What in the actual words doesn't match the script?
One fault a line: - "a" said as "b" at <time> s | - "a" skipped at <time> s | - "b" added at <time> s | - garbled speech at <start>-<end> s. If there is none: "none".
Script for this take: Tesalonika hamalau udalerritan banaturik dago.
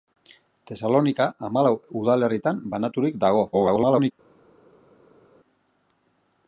- garbled speech at 3.5-4.1 s